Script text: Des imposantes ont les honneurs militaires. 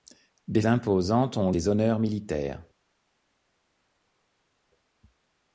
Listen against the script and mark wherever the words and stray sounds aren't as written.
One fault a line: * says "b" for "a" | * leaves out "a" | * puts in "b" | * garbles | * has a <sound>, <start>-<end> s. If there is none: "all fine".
all fine